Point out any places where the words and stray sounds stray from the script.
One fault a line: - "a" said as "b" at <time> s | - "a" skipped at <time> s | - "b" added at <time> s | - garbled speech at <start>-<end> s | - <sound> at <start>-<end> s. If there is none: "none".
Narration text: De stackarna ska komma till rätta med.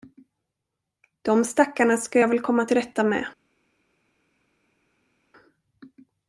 - "jag väl" added at 2.2 s